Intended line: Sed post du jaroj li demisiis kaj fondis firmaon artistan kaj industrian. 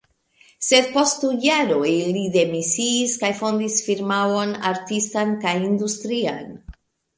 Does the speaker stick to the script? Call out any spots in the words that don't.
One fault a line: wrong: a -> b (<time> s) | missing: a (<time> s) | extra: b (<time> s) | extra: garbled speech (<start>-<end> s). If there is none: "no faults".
no faults